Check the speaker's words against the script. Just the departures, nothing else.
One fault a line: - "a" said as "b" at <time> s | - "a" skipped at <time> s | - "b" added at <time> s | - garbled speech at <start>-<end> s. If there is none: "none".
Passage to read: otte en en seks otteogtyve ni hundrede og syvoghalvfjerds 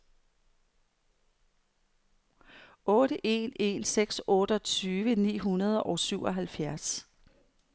none